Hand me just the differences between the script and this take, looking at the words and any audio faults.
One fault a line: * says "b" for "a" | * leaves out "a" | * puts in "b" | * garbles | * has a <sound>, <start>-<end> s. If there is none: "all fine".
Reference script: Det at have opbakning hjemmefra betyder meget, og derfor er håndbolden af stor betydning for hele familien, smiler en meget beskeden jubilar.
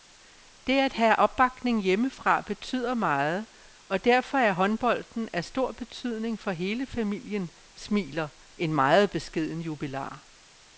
all fine